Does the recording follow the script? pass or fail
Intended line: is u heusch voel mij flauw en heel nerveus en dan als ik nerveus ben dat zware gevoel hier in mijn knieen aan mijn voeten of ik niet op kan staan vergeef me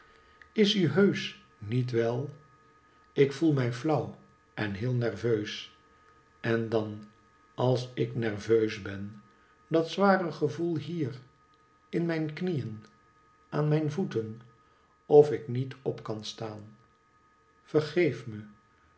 fail